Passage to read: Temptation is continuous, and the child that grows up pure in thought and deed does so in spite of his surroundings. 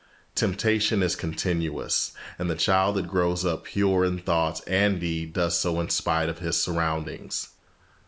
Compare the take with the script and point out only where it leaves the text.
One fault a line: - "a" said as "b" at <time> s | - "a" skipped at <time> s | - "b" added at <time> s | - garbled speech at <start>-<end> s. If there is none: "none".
none